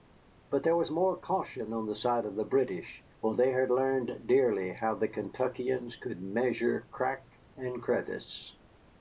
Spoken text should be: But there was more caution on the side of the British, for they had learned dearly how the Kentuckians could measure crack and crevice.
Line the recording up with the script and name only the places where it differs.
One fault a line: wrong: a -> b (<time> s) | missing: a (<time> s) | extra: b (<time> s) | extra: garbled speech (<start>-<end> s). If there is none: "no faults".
no faults